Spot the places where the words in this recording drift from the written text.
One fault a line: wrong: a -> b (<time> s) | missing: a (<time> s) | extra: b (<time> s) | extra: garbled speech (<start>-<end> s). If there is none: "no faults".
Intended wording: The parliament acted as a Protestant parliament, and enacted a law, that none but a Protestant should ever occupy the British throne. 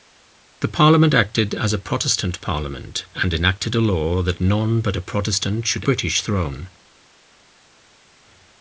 missing: ever occupy the (5.8 s)